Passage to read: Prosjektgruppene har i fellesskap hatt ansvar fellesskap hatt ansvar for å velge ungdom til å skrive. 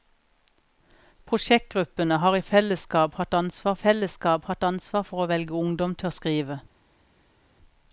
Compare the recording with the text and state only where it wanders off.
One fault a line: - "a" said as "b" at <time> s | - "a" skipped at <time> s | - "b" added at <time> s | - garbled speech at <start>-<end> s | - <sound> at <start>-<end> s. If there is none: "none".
none